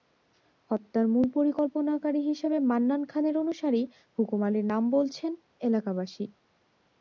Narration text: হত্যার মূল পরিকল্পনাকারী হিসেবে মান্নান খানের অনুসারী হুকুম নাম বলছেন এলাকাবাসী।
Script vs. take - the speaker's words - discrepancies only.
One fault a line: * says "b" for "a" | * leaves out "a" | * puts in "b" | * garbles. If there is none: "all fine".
* puts in "আলীর"